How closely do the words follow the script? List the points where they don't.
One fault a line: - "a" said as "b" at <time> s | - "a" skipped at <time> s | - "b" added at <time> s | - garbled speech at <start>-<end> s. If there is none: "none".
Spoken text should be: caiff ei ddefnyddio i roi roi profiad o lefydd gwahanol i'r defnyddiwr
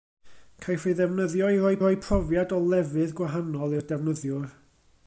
none